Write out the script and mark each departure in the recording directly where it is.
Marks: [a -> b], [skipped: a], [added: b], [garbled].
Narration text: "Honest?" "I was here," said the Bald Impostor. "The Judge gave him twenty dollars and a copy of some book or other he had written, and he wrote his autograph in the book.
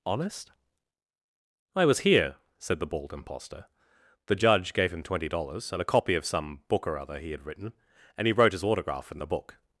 "Honest?" "I was here," said the Bald Impostor. "The Judge gave him twenty dollars and a copy of some book or other he had written, and he wrote his autograph in the book.